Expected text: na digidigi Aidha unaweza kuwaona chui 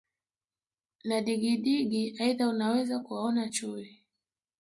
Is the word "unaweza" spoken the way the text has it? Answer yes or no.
yes